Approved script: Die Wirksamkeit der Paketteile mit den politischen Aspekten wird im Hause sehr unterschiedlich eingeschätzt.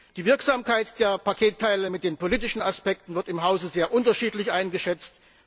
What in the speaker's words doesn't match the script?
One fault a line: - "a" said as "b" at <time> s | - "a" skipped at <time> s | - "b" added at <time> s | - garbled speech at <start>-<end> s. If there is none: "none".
none